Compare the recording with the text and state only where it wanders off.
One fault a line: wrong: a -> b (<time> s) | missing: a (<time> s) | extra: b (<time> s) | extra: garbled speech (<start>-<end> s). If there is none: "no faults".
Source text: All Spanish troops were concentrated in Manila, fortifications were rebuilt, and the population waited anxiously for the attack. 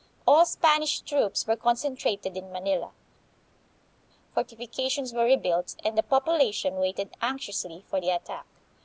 no faults